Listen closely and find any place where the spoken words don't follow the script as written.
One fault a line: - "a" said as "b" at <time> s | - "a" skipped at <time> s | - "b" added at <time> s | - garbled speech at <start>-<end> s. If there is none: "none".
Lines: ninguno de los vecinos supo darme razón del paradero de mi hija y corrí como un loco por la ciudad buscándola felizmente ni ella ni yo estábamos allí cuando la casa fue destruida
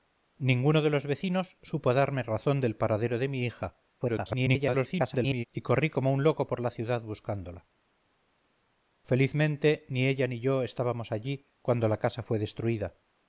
- garbled speech at 4.0-5.4 s